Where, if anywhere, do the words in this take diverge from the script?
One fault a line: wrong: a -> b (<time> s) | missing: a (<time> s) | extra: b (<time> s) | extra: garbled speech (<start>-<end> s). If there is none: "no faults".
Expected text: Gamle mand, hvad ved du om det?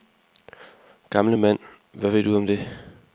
no faults